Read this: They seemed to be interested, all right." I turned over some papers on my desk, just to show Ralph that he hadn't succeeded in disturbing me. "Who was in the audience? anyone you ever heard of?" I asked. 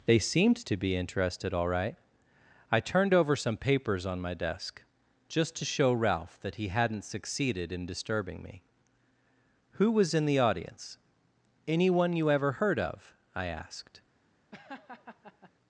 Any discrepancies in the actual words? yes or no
no